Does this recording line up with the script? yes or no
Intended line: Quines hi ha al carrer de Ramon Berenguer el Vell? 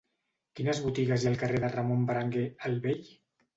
no